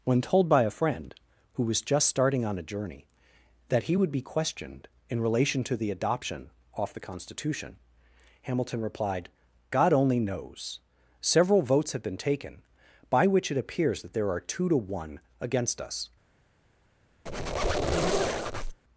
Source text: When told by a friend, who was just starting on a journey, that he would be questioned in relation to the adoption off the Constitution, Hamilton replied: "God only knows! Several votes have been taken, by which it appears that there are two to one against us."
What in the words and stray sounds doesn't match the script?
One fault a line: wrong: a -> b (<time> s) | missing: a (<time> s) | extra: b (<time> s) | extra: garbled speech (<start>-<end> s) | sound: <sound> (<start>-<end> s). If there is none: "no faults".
sound: squeak (17.3-18.8 s)